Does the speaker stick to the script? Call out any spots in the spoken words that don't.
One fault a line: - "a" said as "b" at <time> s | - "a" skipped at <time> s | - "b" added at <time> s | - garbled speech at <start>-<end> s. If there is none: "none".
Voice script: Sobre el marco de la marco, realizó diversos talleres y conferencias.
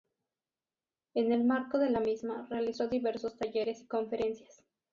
- "Sobre" said as "En" at 1.1 s
- "marco" said as "misma" at 2.0 s